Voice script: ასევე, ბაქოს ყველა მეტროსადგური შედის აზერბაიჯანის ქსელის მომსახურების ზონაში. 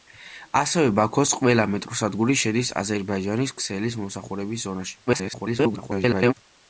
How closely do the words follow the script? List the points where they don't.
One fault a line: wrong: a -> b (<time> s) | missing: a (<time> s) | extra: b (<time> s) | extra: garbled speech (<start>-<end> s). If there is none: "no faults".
extra: garbled speech (5.1-6.3 s)